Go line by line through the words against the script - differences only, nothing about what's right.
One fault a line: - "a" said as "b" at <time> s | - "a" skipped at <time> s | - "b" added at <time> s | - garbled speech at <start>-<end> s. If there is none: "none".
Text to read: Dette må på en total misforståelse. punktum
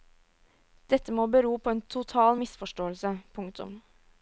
- "bero" added at 1.4 s